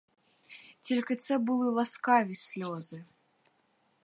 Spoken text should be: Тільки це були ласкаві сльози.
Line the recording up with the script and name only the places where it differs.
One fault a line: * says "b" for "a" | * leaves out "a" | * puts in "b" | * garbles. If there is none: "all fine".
all fine